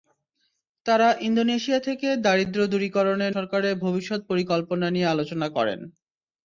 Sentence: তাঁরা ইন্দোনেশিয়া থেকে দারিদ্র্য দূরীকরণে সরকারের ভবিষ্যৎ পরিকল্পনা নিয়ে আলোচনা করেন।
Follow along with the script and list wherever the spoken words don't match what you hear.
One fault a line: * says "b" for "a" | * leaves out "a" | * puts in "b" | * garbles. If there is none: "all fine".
all fine